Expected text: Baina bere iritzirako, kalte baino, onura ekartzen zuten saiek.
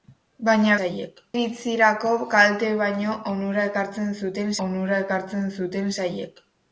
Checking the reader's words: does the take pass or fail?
fail